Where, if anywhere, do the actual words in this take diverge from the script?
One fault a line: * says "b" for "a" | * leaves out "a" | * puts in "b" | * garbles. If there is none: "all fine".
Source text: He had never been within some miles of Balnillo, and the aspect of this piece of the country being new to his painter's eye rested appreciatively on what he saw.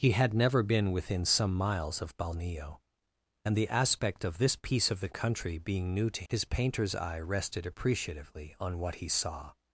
all fine